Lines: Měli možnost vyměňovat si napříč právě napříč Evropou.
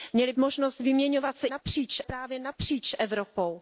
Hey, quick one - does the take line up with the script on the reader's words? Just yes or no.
yes